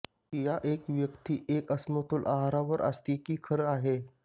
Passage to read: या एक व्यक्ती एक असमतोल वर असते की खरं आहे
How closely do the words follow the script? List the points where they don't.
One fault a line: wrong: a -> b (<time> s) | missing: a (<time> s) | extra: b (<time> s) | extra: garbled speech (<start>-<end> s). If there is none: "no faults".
extra: आहार (2.3 s)